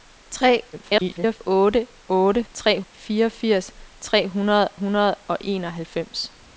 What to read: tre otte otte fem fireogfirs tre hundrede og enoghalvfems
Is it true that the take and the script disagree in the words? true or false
true